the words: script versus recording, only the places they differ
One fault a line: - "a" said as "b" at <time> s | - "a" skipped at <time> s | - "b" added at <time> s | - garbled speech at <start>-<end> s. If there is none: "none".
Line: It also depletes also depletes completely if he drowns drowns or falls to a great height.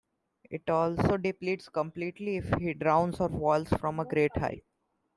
- "also depletes" skipped at 1.7 s
- "drowns" skipped at 3.2 s
- "to" said as "from" at 3.7 s